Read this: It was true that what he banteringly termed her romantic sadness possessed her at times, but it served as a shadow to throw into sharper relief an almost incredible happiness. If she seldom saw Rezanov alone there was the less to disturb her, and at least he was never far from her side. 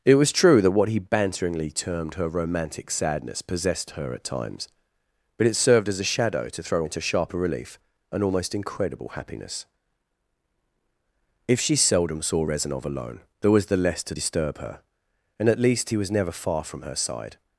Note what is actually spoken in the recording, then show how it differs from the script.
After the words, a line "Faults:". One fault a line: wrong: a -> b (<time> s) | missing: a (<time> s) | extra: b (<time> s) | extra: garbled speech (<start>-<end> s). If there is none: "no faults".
It was true that what he banteringly termed her romantic sadness possessed her at times, but it served as a shadow to throw into sharper relief an almost incredible happiness. If she seldom saw Rezanov alone there was the less to disturb her, and at least he was never far from her side.
Faults:
no faults